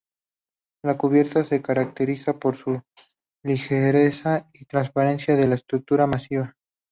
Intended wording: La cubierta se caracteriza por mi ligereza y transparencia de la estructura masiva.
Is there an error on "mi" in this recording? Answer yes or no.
yes